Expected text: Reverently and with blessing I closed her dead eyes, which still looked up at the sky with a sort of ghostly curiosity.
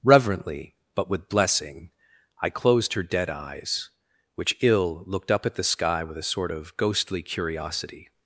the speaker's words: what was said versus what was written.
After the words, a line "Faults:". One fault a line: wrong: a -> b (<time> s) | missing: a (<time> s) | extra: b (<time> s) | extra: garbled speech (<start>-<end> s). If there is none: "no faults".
Reverently but with blessing I closed her dead eyes, which ill looked up at the sky with a sort of ghostly curiosity.
Faults:
wrong: and -> but (0.9 s)
wrong: still -> ill (4.6 s)